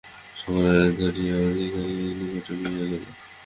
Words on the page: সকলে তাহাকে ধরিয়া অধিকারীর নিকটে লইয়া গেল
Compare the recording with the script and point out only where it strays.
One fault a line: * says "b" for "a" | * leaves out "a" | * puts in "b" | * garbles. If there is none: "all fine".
* leaves out "তাহাকে"